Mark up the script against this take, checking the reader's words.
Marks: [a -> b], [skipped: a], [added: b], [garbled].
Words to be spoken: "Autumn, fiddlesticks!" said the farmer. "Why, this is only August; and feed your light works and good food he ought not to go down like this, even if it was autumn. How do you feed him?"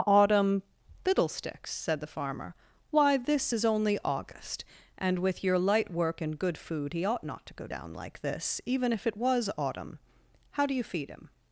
"Autumn, fiddlesticks!" said the farmer. "Why, this is only August; and [feed -> with] your light [works -> work] and good food he ought not to go down like this, even if it was autumn. How do you feed him?"